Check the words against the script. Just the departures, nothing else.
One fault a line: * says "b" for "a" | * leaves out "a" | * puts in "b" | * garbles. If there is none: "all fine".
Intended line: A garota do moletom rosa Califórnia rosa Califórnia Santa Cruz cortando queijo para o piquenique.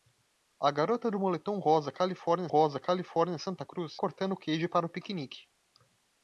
all fine